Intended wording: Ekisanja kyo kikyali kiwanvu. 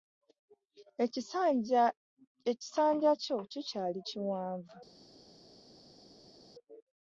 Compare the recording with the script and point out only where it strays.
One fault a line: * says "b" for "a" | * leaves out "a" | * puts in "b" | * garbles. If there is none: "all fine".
all fine